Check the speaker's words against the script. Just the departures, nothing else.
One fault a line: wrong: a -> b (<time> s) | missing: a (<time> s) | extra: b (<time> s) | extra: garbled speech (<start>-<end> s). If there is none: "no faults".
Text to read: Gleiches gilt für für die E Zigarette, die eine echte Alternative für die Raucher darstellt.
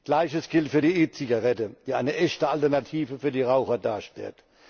missing: für (0.8 s)